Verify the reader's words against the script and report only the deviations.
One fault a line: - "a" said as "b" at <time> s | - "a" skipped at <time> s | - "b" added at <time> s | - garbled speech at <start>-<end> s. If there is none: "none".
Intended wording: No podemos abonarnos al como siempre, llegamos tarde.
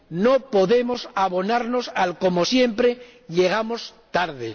none